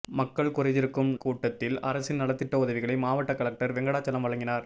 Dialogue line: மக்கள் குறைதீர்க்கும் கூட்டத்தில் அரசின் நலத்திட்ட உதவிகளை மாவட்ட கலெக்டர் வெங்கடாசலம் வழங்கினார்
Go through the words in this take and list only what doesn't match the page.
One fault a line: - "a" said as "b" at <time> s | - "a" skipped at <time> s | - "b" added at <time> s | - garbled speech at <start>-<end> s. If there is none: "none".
none